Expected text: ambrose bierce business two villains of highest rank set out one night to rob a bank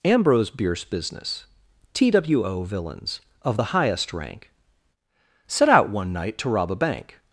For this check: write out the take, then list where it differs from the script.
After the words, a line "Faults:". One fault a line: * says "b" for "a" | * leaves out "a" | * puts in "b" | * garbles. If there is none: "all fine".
ambrose bierce business two villains of the highest rank set out one night to rob a bank
Faults:
* puts in "the"